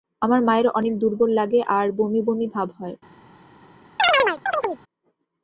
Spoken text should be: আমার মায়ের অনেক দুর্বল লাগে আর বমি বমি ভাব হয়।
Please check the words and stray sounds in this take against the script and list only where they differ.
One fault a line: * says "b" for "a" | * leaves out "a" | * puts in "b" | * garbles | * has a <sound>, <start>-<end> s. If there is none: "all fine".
* has a chirp, 4.0-4.8 s